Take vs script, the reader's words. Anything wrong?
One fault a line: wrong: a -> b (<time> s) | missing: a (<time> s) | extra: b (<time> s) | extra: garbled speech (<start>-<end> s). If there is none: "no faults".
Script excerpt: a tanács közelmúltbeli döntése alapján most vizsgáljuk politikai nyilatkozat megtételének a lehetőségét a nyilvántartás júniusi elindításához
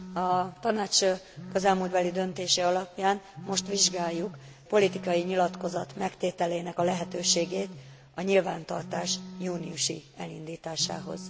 no faults